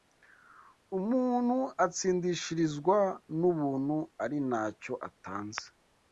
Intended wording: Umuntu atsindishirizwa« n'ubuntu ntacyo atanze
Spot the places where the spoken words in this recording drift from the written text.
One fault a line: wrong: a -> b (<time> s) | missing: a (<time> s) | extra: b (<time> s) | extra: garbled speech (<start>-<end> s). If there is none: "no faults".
extra: ari (4.2 s)